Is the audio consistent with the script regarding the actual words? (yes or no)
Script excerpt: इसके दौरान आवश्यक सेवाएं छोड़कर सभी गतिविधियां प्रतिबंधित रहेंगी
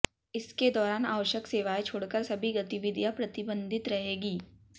yes